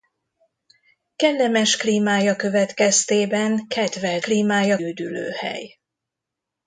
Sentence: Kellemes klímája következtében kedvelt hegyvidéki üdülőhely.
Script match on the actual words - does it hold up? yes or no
no